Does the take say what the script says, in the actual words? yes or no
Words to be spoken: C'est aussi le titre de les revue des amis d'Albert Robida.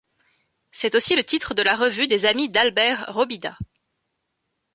no